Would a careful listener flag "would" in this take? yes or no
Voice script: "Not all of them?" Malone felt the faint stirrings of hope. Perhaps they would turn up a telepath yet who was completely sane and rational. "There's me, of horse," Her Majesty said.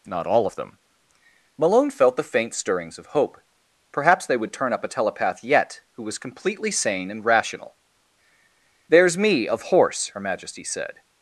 no